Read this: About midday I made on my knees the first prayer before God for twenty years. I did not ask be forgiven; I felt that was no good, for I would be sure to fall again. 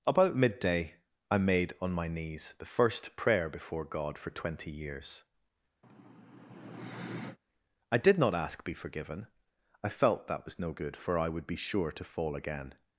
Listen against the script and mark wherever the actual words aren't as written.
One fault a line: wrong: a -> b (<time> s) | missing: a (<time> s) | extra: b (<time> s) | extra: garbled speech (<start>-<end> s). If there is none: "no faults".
no faults